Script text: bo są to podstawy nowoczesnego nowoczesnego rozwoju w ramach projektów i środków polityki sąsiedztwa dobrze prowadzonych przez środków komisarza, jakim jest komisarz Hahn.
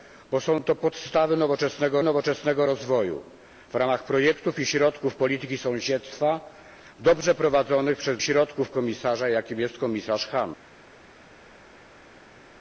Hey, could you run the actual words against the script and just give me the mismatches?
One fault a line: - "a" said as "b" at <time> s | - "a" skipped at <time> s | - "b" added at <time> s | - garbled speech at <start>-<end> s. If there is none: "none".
none